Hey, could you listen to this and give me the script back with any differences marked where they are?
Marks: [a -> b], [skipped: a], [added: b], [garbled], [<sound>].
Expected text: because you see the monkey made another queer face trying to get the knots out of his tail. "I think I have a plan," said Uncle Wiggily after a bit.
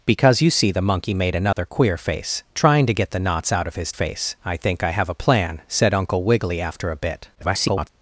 because you see the monkey made another [dropout] queer face trying to get the knots out of his [tail. -> face] "I think I have a plan," said Uncle Wiggily after a bit. [garbled]